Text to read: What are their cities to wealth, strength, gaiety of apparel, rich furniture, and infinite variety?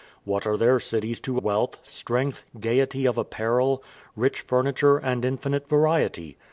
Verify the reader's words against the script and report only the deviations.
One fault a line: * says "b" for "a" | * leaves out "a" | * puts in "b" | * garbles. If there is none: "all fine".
all fine